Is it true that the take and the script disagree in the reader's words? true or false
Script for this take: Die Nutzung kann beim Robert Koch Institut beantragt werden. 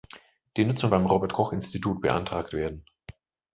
true